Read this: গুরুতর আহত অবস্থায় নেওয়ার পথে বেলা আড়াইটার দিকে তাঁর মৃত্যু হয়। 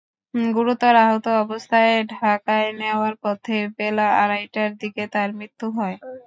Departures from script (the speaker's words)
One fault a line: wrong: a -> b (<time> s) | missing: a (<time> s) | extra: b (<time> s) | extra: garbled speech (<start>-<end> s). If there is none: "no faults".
extra: ঢাকায় (2.1 s)